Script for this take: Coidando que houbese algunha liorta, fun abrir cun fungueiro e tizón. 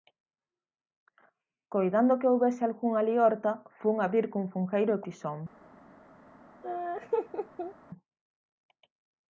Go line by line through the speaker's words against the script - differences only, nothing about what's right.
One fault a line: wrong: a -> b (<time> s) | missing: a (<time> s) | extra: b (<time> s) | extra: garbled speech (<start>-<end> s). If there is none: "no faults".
no faults